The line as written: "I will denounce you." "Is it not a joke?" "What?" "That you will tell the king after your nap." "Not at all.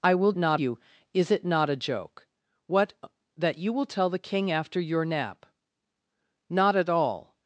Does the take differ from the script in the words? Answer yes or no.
yes